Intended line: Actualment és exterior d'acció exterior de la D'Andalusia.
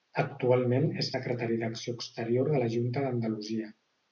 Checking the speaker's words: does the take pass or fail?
fail